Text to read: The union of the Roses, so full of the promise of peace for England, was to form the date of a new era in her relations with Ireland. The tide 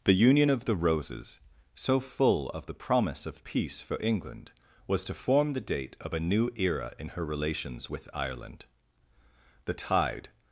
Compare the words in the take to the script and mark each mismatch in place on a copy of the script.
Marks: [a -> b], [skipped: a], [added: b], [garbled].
The union of the Roses, so full of the promise of peace for England, was to form the date of a new era in her relations with Ireland. The tide